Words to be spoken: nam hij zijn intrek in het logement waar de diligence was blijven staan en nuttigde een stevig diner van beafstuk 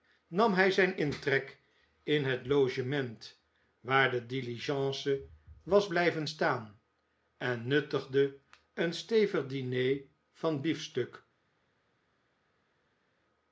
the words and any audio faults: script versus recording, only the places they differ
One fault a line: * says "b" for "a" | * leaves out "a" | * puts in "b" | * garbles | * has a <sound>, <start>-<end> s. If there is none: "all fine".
all fine